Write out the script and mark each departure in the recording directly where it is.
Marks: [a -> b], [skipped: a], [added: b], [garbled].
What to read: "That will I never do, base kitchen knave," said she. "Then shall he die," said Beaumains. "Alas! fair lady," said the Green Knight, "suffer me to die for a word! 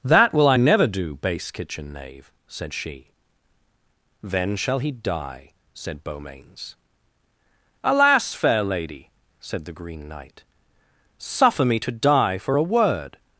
"That will I never do, base kitchen knave," said she. "Then shall he die," said Beaumains. "Alas! fair lady," said the Green Knight, "suffer me to die for a word!